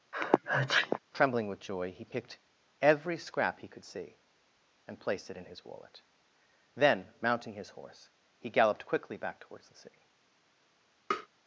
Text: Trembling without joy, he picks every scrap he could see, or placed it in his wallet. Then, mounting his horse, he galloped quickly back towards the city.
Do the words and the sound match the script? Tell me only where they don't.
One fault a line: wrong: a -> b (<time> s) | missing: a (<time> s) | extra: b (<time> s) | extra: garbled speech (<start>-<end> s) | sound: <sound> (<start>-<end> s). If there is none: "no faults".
sound: sneeze (0.1-1.0 s)
wrong: without -> with (1.5 s)
wrong: picks -> picked (2.0 s)
wrong: or -> and (4.9 s)
sound: tap (11.1-11.3 s)